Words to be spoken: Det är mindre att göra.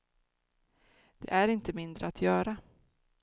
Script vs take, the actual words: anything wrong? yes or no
yes